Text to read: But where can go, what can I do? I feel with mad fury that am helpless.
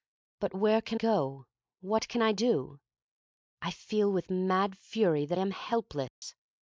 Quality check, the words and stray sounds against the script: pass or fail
fail